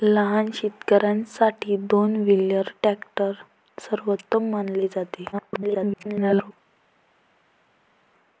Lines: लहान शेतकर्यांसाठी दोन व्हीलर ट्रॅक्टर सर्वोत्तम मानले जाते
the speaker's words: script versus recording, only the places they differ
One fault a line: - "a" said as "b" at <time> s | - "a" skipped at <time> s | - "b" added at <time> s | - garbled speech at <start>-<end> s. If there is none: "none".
- garbled speech at 5.3-6.5 s